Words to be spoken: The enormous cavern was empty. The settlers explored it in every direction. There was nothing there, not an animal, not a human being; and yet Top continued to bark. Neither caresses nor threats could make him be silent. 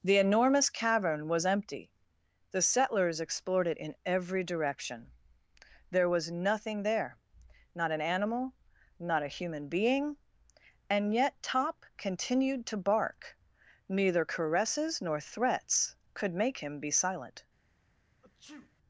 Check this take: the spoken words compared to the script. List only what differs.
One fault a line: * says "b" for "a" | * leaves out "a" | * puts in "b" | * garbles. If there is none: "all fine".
all fine